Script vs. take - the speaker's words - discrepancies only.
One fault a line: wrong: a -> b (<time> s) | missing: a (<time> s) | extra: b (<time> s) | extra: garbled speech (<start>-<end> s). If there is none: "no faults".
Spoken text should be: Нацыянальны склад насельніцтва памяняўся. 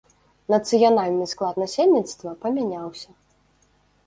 no faults